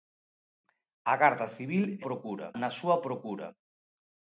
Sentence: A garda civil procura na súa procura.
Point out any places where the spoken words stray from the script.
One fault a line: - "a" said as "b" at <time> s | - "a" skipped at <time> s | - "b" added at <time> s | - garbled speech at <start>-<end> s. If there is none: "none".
none